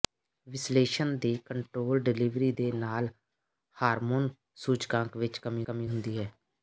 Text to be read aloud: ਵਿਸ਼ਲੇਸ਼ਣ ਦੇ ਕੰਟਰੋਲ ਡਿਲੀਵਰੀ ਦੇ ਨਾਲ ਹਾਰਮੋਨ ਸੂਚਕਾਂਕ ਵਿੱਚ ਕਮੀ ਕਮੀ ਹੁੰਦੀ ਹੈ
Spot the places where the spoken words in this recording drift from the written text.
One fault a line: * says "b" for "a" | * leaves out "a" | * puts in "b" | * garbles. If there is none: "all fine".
all fine